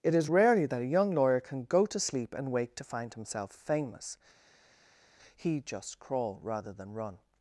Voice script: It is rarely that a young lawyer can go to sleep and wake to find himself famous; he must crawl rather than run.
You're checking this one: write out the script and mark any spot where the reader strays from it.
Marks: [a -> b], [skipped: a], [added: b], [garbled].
It is rarely that a young lawyer can go to sleep and wake to find himself famous; he [must -> just] crawl rather than run.